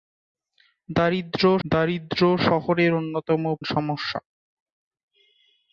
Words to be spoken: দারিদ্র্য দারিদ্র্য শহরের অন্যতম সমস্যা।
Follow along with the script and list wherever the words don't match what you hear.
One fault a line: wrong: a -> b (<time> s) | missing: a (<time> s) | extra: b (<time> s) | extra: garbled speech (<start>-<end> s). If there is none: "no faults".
no faults